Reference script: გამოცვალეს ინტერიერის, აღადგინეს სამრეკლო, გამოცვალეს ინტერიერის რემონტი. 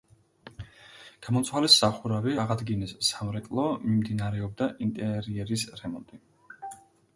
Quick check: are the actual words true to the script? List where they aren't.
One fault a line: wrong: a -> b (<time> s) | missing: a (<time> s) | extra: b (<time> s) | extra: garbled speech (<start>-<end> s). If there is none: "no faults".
wrong: ინტერიერის -> სახურავი (1.8 s)
wrong: გამოცვალეს -> მიმდინარეობდა (3.9 s)